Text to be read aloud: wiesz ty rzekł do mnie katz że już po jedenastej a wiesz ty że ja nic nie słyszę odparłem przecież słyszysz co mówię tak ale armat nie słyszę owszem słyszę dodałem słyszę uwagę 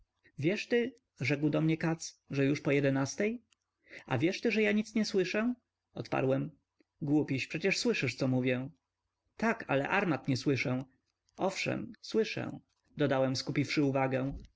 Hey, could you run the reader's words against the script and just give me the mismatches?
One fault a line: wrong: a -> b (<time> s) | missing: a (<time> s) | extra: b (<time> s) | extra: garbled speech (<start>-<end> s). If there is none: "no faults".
extra: głupiś (7.0 s)
wrong: słyszę -> skupiwszy (13.4 s)